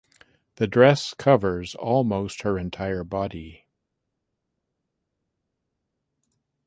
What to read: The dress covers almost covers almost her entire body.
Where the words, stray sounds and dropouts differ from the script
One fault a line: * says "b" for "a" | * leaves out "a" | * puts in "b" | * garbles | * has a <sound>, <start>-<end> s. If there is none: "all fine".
* leaves out "covers almost"